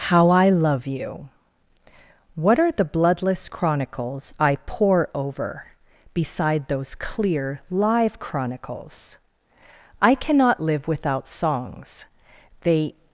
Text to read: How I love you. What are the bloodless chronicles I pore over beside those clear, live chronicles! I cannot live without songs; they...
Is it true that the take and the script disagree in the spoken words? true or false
false